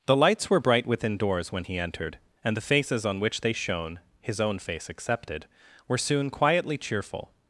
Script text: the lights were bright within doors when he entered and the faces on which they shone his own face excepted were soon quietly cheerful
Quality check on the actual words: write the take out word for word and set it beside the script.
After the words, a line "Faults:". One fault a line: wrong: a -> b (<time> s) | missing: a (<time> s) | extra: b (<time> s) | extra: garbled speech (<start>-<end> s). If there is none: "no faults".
the lights were bright within doors when he entered and the faces on which they shone his own face excepted were soon quietly cheerful
Faults:
no faults